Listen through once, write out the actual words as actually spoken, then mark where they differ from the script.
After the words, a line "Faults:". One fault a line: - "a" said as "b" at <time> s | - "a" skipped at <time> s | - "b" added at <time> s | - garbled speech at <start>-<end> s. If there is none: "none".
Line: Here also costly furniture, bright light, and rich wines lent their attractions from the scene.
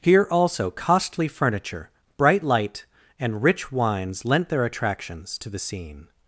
Here also costly furniture, bright light, and rich wines lent their attractions to the scene.
Faults:
- "from" said as "to" at 5.4 s